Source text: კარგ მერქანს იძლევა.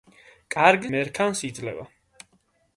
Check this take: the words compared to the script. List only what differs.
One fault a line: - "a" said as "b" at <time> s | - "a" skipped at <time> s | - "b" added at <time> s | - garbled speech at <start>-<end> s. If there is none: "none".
none